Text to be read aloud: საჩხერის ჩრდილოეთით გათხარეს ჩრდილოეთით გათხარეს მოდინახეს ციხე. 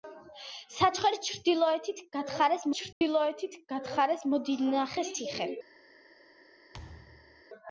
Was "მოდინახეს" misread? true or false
false